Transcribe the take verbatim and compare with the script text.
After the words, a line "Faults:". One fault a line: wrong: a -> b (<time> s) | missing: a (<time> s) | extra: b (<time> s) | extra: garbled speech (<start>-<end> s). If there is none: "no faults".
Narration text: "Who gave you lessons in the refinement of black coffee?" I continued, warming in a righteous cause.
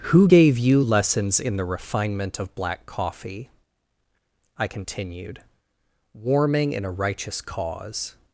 "Who gave you lessons in the refinement of black coffee?" I continued, warming in a righteous cause.
Faults:
no faults